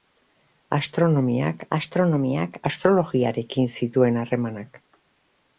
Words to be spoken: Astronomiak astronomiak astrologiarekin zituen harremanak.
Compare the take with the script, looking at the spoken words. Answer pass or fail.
pass